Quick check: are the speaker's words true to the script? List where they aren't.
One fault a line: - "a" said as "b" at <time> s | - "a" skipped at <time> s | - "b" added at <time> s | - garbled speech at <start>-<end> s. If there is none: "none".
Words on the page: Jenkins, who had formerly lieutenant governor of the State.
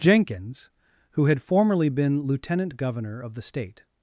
- "been" added at 1.9 s